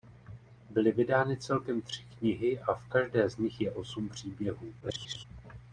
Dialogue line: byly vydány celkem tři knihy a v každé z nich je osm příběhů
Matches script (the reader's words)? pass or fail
fail